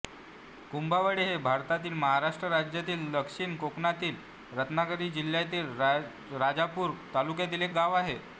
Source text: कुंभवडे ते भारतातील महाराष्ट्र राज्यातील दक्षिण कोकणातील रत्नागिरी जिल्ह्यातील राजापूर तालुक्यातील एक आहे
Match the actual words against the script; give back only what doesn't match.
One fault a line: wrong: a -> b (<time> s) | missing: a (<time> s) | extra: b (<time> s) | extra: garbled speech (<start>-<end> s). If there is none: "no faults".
wrong: ते -> हे (1.2 s)
extra: गाव (7.7 s)